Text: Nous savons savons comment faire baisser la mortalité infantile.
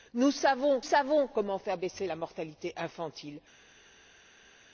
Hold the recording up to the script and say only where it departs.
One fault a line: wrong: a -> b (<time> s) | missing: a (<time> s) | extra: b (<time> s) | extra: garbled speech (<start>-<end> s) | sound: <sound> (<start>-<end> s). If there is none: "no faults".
no faults